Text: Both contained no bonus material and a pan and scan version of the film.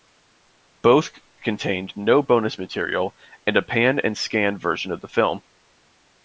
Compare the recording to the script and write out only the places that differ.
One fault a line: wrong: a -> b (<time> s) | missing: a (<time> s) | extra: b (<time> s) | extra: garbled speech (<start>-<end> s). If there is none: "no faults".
no faults